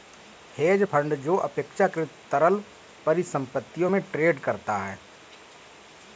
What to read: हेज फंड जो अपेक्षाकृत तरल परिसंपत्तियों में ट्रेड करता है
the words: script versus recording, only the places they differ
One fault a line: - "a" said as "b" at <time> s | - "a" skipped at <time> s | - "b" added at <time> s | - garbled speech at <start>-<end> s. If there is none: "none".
none